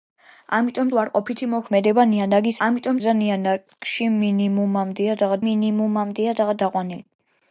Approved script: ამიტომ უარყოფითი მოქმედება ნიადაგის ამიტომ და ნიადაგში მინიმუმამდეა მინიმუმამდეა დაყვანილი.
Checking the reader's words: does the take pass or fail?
pass